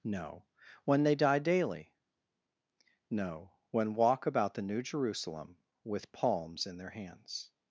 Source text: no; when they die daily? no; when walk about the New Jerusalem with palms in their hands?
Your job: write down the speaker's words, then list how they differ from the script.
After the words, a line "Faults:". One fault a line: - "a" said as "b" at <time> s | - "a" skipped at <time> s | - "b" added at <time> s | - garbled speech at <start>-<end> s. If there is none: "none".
no; when they die daily? no; when walk about the New Jerusalem with palms in their hands?
Faults:
none